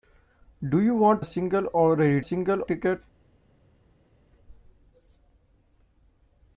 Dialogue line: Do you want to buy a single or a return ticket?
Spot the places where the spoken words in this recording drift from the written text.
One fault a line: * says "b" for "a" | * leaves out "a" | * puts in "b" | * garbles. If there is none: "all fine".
* leaves out "to buy"
* says "single" for "return"